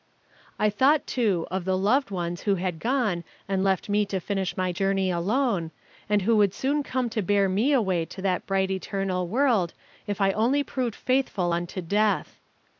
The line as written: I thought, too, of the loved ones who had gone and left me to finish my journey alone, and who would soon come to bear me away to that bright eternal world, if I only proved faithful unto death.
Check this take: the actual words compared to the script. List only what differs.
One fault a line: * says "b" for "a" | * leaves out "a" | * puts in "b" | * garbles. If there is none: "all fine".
all fine